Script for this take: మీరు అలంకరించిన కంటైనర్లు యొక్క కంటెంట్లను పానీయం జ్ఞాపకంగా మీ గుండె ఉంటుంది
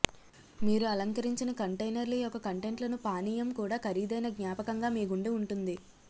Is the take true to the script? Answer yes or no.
no